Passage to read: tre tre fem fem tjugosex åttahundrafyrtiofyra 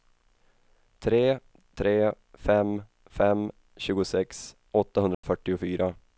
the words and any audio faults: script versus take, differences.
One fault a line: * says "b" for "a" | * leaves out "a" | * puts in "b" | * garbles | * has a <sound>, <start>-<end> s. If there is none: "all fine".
* has a dropout, 5.1-5.2 s